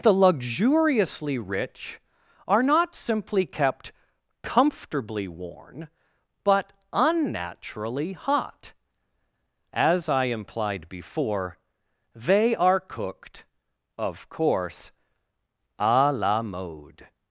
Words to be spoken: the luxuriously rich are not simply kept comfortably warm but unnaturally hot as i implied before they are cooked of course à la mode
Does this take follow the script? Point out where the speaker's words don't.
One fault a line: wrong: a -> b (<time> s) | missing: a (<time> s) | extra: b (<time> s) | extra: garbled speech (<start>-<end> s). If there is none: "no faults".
wrong: warm -> worn (5.3 s)